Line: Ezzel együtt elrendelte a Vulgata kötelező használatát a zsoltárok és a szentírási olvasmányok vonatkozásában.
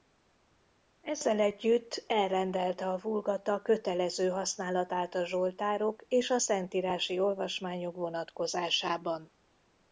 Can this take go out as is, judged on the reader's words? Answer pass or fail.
pass